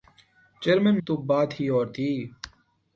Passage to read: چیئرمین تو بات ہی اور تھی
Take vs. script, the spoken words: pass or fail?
pass